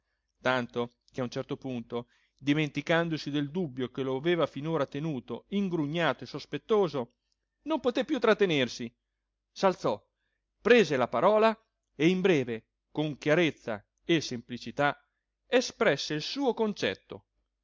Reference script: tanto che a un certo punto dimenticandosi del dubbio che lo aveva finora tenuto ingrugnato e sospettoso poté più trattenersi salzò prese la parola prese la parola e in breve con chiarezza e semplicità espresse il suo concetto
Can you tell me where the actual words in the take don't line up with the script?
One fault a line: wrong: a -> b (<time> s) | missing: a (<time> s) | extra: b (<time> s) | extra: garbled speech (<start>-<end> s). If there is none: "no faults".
extra: non (7.6 s)
missing: prese la parola (11.6 s)